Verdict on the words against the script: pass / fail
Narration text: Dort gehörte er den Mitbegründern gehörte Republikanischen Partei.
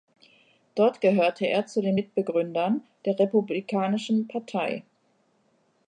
fail